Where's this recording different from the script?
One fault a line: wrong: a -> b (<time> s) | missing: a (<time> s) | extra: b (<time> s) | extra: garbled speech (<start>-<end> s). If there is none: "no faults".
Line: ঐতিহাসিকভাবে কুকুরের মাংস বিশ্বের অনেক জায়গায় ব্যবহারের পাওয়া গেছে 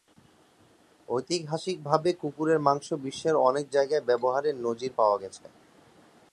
extra: নজির (4.6 s)